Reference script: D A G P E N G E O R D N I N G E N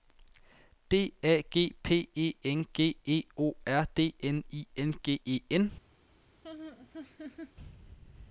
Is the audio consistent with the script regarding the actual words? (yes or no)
yes